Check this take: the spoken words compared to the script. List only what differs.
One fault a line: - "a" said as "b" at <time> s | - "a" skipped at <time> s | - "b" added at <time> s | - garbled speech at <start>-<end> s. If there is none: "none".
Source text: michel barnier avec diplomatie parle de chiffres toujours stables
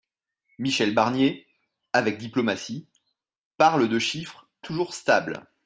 none